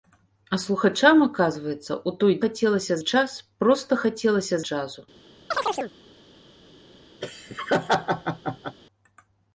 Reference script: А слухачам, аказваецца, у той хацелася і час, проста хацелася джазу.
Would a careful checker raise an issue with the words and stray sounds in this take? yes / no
yes